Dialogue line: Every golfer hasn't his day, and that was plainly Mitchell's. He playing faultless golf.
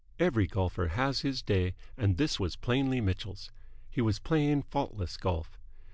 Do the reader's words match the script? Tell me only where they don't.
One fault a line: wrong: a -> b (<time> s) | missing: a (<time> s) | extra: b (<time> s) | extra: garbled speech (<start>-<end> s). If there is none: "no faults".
wrong: hasn't -> has (0.9 s)
wrong: that -> this (2.1 s)
extra: was (4.0 s)